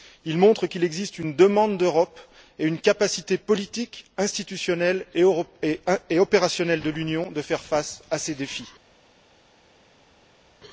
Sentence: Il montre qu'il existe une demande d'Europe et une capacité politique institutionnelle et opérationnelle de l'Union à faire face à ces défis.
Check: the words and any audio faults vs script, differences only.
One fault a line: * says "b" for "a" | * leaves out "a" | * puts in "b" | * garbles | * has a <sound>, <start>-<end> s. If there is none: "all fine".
all fine